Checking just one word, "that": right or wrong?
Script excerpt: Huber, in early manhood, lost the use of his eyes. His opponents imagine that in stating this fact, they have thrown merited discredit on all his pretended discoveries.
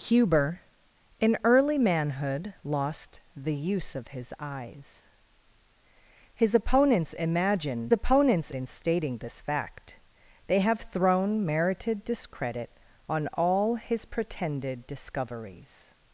wrong